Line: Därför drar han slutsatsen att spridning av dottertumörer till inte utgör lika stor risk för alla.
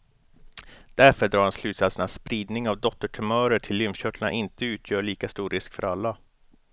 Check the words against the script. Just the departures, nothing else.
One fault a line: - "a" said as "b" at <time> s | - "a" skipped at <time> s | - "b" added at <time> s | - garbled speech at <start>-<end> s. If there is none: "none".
- "lymfkörtlarna" added at 3.8 s